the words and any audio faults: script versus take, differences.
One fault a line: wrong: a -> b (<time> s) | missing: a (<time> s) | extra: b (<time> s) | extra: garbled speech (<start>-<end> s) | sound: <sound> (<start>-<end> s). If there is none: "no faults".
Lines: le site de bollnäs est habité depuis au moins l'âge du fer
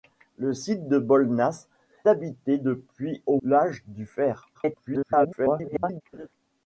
missing: est (1.7 s)
missing: moins (3.4 s)
extra: garbled speech (4.5-6.0 s)
sound: laugh (6.1-6.3 s)